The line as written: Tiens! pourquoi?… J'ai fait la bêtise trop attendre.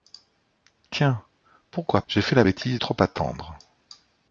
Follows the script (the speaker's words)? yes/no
yes